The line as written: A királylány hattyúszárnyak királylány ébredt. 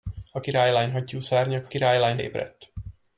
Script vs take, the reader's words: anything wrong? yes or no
no